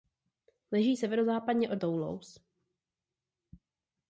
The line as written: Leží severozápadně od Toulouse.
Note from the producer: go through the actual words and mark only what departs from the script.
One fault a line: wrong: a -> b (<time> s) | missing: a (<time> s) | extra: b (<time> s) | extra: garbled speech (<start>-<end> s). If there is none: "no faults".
no faults